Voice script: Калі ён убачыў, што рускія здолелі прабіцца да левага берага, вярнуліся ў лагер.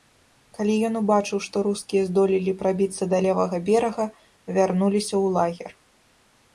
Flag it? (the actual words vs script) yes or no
no